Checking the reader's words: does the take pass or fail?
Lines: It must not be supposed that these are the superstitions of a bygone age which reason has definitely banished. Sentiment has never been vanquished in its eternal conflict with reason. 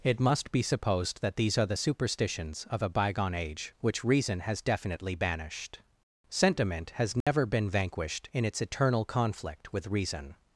fail